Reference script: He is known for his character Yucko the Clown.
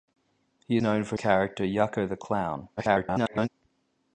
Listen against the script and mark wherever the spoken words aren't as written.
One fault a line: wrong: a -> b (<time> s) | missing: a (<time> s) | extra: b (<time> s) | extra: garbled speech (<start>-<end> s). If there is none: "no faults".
missing: is (0.8 s)
missing: his (1.2 s)
extra: garbled speech (2.8-3.5 s)